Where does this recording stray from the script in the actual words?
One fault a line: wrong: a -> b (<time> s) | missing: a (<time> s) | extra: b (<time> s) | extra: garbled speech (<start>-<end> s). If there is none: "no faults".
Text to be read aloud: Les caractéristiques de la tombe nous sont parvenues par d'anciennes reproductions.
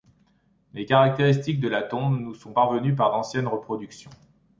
no faults